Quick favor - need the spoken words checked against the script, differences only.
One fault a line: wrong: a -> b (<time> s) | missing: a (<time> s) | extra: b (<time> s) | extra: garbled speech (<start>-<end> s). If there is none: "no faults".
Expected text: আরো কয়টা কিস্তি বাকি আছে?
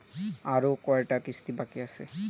no faults